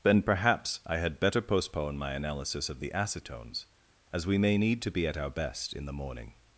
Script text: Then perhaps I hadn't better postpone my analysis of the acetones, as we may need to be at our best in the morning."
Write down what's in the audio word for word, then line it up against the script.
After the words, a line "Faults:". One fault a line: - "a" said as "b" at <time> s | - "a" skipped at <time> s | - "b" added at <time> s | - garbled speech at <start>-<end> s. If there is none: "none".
Then perhaps I had better postpone my analysis of the acetones, as we may need to be at our best in the morning."
Faults:
- "hadn't" said as "had" at 1.0 s